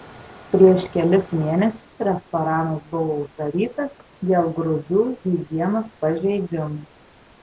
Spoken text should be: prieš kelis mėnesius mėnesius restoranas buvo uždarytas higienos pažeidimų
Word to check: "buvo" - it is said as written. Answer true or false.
true